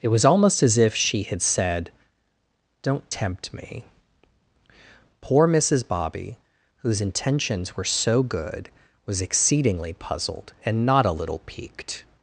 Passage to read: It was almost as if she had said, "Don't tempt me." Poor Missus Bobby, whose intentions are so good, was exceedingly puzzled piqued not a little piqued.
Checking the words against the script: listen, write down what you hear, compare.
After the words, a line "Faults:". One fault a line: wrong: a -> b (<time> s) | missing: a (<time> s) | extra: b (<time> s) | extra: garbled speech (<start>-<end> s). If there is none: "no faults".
It was almost as if she had said, "Don't tempt me." Poor Missus Bobby, whose intentions were so good, was exceedingly puzzled and not a little piqued.
Faults:
wrong: are -> were (7.7 s)
wrong: piqued -> and (10.6 s)